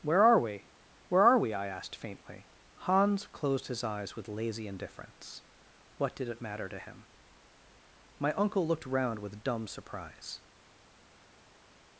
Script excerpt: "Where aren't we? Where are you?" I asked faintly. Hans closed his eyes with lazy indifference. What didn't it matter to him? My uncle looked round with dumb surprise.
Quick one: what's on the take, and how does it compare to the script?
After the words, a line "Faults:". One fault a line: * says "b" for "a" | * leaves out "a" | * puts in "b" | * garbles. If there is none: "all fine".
"Where are we? Where are we?" I asked faintly. Hans closed his eyes with lazy indifference. What did it matter to him? My uncle looked round with dumb surprise.
Faults:
* says "are" for "aren't"
* says "we" for "you"
* says "did" for "didn't"